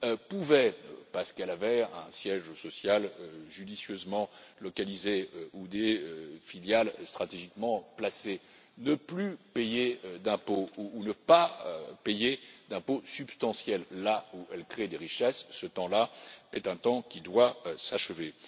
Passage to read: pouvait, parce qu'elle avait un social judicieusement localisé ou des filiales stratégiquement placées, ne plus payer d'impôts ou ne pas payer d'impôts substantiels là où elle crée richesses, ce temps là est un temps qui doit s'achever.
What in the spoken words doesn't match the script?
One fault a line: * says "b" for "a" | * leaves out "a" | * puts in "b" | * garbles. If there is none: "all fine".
* puts in "siège"
* puts in "des"